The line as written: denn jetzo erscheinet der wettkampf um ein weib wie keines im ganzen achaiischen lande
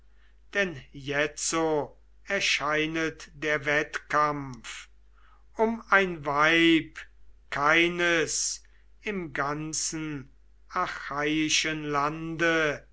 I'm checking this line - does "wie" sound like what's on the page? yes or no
no